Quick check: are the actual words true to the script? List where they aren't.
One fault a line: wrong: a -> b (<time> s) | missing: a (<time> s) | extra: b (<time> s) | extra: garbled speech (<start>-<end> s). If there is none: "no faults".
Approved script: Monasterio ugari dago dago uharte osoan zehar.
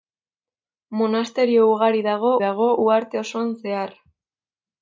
no faults